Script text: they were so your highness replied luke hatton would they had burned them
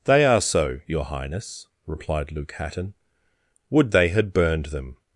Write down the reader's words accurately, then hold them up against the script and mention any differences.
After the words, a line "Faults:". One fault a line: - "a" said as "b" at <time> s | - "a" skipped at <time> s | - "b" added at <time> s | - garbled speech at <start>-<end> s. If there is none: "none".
they are so your highness replied luke hatton would they had burned them
Faults:
- "were" said as "are" at 0.2 s